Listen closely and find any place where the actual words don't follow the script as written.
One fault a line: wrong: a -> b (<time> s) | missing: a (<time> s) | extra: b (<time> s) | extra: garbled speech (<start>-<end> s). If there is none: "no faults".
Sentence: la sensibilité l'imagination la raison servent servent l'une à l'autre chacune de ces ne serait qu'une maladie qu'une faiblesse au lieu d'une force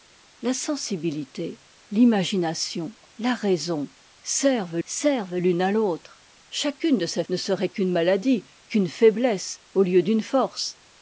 no faults